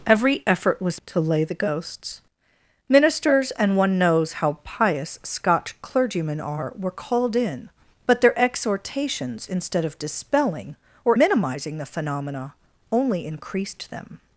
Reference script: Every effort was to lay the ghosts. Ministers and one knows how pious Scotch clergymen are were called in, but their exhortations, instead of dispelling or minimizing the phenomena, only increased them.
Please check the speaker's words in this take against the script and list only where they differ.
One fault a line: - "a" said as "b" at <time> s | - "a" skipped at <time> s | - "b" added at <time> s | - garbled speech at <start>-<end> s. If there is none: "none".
none